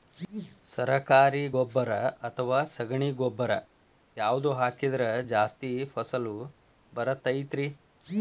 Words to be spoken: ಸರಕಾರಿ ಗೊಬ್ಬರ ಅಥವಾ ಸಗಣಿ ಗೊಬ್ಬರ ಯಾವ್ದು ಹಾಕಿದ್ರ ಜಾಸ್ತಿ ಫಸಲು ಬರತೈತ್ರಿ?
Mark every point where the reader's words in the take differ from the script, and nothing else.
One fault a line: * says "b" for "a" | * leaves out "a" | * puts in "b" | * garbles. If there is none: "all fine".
all fine